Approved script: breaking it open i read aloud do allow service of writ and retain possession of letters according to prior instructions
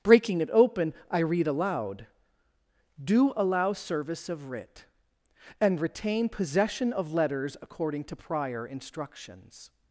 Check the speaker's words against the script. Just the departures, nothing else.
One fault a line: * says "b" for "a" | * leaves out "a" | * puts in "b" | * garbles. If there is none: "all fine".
all fine